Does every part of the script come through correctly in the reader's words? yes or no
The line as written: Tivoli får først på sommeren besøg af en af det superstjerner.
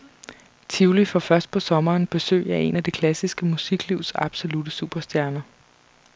no